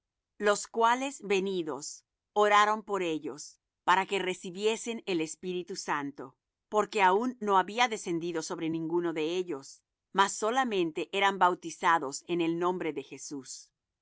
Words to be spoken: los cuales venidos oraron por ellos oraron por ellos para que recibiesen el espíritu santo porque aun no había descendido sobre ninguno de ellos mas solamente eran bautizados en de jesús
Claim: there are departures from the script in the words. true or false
true